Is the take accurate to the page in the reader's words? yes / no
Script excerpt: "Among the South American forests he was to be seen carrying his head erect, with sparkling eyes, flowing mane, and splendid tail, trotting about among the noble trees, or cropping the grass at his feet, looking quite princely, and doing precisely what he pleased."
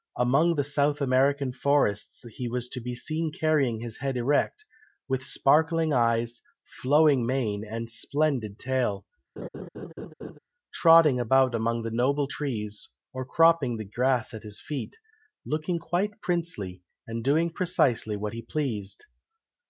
yes